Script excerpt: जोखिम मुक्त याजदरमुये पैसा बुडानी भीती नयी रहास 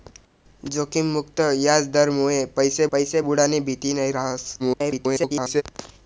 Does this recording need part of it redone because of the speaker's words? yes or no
yes